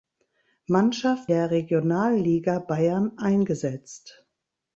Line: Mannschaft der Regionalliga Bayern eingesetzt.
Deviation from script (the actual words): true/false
false